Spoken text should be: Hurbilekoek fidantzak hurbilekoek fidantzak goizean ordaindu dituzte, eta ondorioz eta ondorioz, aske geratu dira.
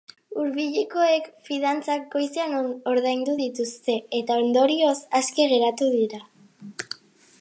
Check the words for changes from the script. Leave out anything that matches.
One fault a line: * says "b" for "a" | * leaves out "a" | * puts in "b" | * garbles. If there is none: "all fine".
* leaves out "hurbilekoek fidantzak"
* leaves out "eta ondorioz"